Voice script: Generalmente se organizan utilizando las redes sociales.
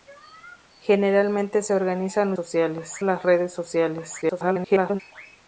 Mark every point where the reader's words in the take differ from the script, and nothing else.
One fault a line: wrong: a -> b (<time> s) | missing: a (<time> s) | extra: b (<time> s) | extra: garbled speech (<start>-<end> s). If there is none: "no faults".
wrong: utilizando -> sociales (2.3 s)
extra: garbled speech (4.2-5.0 s)